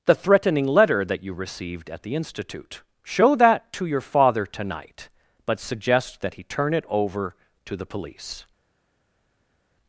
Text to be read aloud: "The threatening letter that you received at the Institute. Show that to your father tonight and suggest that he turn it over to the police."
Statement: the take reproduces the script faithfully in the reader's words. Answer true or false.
false